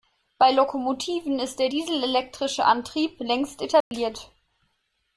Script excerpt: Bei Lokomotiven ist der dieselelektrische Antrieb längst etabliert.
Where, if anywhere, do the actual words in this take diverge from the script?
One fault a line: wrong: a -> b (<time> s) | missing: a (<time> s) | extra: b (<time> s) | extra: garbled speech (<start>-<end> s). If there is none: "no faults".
no faults